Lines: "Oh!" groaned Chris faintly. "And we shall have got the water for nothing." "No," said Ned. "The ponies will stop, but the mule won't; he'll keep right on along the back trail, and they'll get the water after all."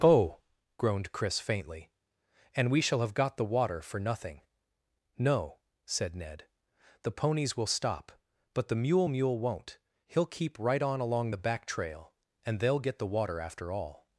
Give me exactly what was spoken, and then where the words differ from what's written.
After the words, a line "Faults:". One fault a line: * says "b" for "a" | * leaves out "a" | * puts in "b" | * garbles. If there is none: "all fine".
"Oh!" groaned Chris faintly. "And we shall have got the water for nothing." "No," said Ned. "The ponies will stop, but the mule mule won't; he'll keep right on along the back trail, and they'll get the water after all."
Faults:
* puts in "mule"